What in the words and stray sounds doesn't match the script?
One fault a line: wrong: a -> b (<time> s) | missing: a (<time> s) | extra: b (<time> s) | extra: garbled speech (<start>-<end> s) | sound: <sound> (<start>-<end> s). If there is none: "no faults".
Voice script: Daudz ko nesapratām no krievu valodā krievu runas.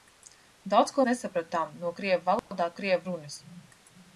sound: dropout (2.4-2.5 s)